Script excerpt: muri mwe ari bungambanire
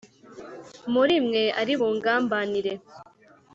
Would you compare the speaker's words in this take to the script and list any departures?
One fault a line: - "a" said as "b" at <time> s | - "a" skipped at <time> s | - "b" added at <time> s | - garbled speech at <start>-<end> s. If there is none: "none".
none